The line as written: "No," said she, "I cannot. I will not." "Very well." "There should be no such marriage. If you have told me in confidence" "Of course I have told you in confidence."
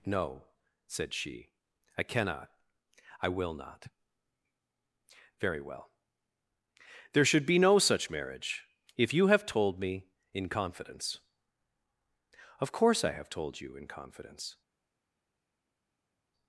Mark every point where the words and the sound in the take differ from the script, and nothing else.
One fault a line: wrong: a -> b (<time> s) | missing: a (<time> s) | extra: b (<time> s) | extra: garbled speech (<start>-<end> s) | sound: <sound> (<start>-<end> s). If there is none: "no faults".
no faults